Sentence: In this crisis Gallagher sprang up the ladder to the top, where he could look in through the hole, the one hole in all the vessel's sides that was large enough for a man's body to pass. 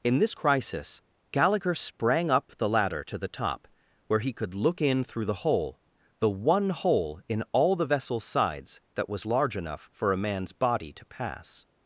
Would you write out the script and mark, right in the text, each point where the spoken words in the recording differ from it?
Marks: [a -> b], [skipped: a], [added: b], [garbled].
In this crisis Gallagher sprang up the ladder to the top, where he could look in through the hole, the one hole in all the vessel's sides that was large enough for a man's body to pass.